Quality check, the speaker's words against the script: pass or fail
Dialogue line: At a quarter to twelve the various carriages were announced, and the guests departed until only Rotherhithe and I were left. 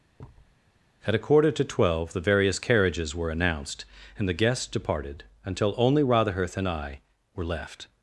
pass